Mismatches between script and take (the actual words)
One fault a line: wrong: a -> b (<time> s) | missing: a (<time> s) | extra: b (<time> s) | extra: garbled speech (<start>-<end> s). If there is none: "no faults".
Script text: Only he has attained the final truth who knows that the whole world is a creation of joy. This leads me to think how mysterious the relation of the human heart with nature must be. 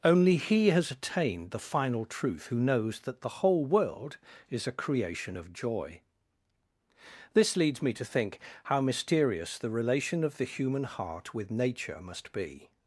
no faults